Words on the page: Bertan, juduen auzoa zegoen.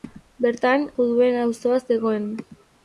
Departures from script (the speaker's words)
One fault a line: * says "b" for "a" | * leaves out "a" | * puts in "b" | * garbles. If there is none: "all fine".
all fine